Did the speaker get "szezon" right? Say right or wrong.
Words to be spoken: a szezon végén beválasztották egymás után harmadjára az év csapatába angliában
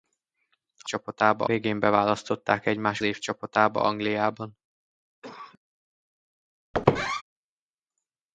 wrong